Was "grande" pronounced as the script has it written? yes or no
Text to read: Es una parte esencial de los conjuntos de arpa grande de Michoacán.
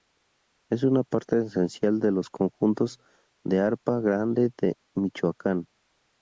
yes